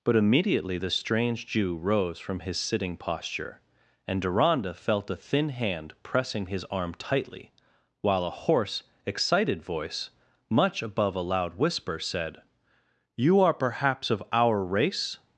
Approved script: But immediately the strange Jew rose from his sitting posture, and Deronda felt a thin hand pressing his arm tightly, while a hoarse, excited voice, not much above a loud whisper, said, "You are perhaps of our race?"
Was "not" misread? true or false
true